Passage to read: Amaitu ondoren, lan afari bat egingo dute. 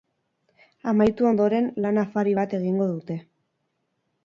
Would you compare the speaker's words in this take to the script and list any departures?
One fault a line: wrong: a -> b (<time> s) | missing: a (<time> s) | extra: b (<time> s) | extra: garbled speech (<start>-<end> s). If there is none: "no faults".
no faults